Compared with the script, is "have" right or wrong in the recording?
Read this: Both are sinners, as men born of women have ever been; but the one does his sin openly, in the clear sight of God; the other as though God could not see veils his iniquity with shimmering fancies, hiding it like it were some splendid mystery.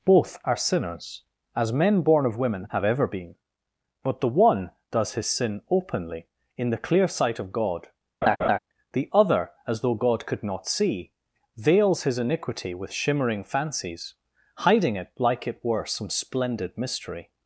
right